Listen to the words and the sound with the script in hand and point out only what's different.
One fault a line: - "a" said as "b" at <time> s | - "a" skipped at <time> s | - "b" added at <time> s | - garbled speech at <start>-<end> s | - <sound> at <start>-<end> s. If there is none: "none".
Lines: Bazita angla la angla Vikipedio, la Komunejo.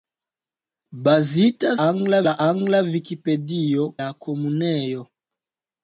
none